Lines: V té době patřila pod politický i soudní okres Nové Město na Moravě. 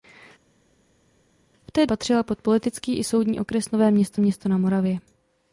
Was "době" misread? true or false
true